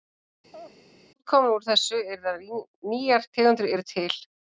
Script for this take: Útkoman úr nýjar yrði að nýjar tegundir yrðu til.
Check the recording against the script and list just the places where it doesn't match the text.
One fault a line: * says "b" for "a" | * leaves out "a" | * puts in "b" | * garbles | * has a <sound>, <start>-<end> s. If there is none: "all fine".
* has a laugh, 0.5-0.8 s
* says "þessu" for "nýjar"